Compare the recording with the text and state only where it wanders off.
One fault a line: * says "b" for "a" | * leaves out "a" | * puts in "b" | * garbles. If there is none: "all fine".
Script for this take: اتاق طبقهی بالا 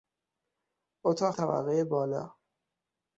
all fine